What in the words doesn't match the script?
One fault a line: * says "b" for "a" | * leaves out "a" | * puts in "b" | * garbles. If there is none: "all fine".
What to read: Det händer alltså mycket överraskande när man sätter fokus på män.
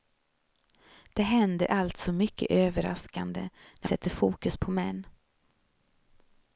* leaves out "man"